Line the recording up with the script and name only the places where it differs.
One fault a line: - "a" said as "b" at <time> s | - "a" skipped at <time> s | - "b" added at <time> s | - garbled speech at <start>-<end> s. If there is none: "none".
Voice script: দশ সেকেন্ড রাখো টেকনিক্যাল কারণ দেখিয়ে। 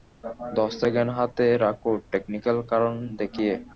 - "হাতে" added at 1.2 s